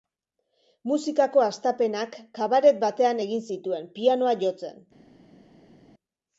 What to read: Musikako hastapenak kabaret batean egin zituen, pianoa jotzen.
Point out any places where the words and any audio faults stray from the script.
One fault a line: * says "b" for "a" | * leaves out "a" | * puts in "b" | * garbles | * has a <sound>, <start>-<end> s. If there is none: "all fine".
all fine